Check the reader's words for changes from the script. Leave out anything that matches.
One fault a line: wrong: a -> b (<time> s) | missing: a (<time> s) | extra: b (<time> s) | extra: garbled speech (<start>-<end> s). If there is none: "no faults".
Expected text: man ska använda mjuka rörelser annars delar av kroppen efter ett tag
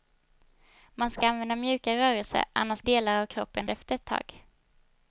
no faults